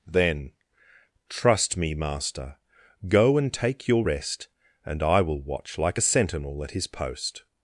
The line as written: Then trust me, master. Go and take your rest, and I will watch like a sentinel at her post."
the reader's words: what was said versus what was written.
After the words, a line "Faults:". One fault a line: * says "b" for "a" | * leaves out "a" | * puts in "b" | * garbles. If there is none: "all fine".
Then trust me, master. Go and take your rest, and I will watch like a sentinel at his post."
Faults:
* says "his" for "her"